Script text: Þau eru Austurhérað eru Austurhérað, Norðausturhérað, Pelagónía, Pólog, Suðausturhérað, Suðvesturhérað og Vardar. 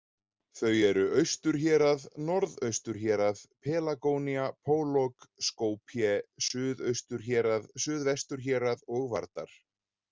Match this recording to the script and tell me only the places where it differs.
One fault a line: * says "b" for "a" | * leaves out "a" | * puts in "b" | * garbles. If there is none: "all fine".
* leaves out "eru Austurhérað"
* puts in "Skopje"